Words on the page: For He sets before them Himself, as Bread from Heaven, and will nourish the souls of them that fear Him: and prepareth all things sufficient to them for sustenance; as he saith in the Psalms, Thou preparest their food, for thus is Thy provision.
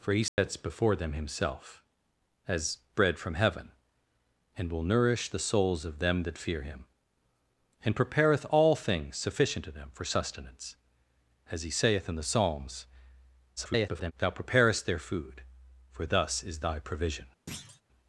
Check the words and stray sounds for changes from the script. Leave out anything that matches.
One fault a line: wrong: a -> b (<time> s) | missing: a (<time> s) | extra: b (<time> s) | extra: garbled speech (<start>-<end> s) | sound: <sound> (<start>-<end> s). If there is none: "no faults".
sound: dropout (0.3-0.4 s)
extra: garbled speech (13.6-14.1 s)
sound: thud (17.5-17.8 s)